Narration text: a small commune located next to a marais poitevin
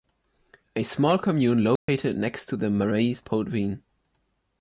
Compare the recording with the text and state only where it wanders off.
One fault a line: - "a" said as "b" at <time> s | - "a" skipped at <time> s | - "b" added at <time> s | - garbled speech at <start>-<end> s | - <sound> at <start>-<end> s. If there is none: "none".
- dropout at 1.8-1.9 s
- "a" said as "the" at 2.5 s